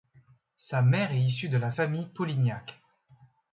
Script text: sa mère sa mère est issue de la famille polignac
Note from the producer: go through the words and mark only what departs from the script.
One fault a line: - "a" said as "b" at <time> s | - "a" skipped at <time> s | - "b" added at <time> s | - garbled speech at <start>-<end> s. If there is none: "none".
- "sa mère" skipped at 1.1 s